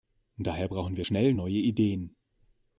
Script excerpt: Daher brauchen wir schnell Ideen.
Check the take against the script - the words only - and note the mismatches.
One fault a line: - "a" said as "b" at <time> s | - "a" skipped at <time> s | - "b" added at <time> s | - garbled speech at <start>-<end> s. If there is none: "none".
- "neue" added at 1.3 s